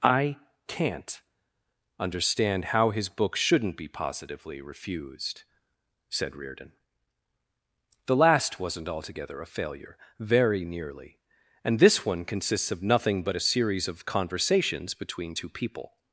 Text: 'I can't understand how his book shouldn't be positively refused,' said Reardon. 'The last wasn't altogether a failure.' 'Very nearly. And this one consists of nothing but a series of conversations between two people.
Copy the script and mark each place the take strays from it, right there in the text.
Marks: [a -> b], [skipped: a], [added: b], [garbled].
'I can't understand how his book shouldn't be positively refused,' said Reardon. 'The last wasn't altogether a failure.' 'Very nearly. And this one consists of nothing but a series of conversations between two people.